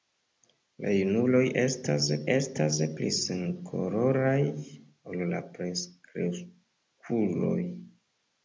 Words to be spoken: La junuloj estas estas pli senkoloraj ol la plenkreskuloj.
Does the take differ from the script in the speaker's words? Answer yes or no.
no